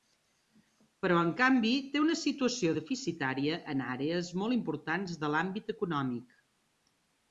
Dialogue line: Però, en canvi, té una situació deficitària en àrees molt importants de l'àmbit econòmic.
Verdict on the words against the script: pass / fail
pass